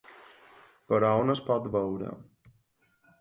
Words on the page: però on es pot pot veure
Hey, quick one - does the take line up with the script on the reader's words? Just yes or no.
no